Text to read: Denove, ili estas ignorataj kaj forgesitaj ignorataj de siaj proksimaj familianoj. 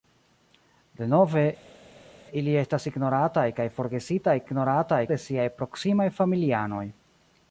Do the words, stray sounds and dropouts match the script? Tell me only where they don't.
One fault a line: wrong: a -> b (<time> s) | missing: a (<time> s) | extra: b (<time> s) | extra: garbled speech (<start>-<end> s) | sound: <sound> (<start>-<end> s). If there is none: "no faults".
no faults